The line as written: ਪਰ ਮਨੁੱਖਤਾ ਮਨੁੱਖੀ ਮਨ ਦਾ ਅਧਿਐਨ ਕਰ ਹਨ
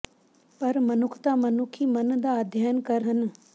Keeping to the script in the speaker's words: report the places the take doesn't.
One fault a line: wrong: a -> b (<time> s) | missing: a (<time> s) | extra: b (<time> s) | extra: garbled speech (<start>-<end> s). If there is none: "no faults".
no faults